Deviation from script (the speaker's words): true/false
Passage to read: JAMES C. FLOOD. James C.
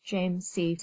true